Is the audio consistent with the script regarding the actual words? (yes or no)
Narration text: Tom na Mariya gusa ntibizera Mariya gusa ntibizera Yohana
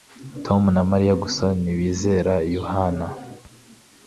no